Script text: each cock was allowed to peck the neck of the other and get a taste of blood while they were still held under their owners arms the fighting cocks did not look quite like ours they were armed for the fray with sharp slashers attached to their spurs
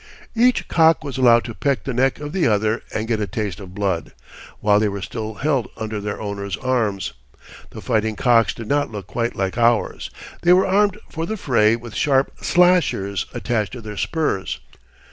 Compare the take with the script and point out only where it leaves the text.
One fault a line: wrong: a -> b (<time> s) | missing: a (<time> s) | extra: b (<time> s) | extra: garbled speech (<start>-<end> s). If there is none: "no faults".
no faults